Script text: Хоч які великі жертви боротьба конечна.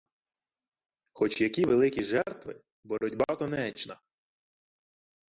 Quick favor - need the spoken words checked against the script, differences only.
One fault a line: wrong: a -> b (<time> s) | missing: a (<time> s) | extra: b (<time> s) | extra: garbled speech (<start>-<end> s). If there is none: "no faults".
no faults